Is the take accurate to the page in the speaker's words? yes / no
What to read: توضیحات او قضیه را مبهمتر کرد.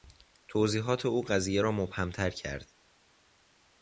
yes